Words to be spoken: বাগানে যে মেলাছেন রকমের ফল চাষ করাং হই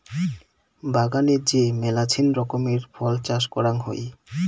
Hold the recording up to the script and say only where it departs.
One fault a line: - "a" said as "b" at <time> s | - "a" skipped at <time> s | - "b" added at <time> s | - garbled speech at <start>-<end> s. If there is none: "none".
none